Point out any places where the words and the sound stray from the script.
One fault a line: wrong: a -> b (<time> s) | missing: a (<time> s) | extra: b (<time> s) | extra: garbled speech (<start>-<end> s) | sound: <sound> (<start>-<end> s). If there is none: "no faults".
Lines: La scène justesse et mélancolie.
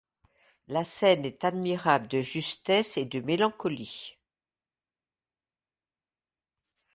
extra: est admirable de (1.2 s)
extra: de (3.0 s)